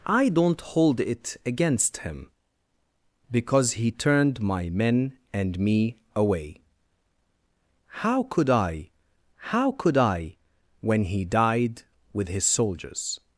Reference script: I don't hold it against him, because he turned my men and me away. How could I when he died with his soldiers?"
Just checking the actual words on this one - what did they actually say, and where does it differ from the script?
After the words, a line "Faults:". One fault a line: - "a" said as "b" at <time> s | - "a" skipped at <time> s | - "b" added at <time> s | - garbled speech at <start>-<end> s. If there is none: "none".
I don't hold it against him, because he turned my men and me away. How could I how could I when he died with his soldiers?"
Faults:
- "how could I" added at 9.4 s